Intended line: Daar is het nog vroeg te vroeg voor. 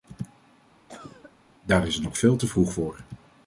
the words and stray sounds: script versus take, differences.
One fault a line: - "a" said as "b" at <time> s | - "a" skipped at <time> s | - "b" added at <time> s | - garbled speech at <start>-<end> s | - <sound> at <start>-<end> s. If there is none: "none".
- cough at 0.9-1.4 s
- "vroeg" said as "veel" at 2.2 s